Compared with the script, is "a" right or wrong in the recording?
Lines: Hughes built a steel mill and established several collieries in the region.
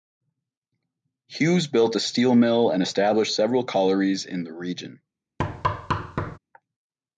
right